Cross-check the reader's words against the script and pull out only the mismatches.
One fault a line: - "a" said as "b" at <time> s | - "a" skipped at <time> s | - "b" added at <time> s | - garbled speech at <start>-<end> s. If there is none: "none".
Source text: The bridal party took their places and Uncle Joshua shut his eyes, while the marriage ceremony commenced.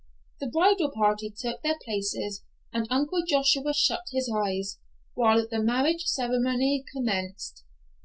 none